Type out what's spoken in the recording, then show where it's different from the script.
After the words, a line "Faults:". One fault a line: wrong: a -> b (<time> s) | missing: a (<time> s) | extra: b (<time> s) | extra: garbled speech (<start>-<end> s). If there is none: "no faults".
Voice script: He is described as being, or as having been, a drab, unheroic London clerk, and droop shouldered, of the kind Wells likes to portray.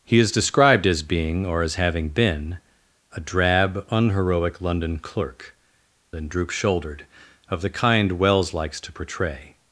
He is described as being, or as having been, a drab, unheroic London clerk, and droop shouldered, of the kind Wells likes to portray.
Faults:
no faults